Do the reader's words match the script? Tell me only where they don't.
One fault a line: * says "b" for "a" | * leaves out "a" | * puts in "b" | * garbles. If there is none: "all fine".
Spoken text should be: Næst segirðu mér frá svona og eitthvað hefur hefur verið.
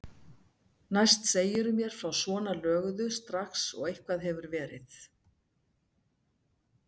* puts in "löguðu strax"
* leaves out "hefur"